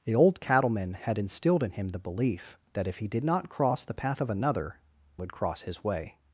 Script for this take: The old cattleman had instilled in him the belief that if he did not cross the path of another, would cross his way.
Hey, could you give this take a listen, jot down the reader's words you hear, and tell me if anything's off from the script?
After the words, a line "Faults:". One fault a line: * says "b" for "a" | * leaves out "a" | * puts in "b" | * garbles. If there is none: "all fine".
The old cattleman had instilled in him the belief that if he did not cross the path of another, would cross his way.
Faults:
all fine